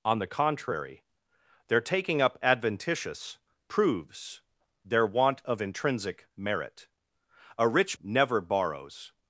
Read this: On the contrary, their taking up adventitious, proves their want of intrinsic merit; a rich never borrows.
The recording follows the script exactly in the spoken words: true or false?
true